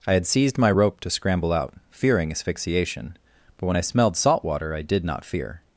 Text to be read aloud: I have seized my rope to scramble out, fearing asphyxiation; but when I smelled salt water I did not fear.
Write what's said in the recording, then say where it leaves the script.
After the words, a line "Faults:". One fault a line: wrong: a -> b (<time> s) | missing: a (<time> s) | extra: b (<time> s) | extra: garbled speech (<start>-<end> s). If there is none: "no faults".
I had seized my rope to scramble out, fearing asphyxiation; but when I smelled salt water I did not fear.
Faults:
wrong: have -> had (0.1 s)